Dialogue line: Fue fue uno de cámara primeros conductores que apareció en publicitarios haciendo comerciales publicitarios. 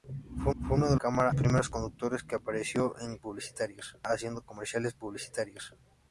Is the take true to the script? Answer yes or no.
yes